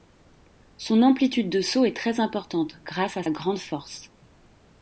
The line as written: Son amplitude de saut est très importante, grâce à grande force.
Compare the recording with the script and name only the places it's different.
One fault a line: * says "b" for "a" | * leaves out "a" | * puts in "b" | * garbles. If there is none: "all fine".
all fine